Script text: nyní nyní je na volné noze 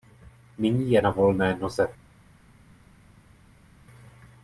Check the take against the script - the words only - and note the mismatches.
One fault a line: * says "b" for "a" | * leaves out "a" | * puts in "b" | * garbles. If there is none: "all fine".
* leaves out "nyní"